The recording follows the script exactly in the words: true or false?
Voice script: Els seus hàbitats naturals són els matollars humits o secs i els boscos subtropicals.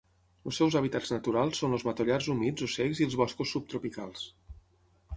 true